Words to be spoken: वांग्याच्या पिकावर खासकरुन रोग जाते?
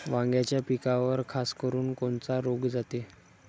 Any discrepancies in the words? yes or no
yes